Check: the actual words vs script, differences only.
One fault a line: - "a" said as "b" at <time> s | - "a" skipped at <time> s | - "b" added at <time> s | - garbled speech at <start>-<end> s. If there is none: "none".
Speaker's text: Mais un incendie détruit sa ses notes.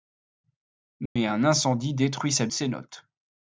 none